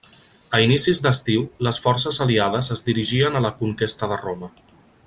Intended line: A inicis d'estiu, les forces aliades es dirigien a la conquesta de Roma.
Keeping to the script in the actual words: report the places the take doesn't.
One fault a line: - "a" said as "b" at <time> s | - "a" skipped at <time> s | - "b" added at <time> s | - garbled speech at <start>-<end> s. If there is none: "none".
none